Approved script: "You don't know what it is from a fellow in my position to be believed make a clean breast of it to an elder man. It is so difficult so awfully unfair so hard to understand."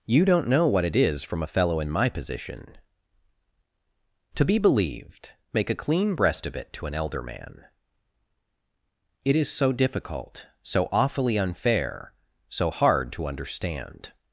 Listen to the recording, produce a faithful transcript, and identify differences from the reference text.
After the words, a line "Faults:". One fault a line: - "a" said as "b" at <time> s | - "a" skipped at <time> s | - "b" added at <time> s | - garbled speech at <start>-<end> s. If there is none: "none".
"You don't know what it is from a fellow in my position to be believed make a clean breast of it to an elder man. It is so difficult so awfully unfair so hard to understand."
Faults:
none